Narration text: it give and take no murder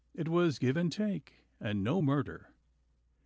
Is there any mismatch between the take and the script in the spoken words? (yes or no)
yes